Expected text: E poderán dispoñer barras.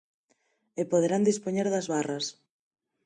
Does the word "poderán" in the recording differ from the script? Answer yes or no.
no